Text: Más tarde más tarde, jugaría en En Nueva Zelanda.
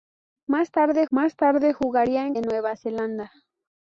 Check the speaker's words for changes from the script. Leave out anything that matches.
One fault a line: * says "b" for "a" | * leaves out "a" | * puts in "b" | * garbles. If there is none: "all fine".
all fine